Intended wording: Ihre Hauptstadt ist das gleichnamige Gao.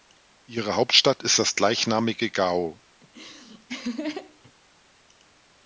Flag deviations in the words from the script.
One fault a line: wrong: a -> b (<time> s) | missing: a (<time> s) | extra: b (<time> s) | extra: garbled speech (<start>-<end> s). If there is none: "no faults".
no faults